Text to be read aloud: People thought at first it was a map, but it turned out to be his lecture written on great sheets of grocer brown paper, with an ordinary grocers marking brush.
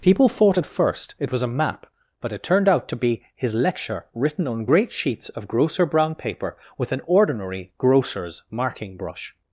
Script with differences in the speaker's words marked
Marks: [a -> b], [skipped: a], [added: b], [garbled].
People thought at first it was a map, but it turned out to be his lecture written on great sheets of grocer brown paper, with an ordinary grocers marking brush.